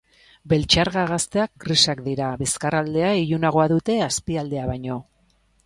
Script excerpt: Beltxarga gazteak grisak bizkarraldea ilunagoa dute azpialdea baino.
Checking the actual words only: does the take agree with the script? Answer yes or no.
no